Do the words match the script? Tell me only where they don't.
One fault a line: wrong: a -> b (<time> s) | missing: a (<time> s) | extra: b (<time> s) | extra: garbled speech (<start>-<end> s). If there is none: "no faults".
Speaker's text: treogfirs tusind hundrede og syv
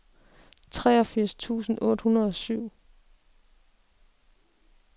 extra: otte (1.8 s)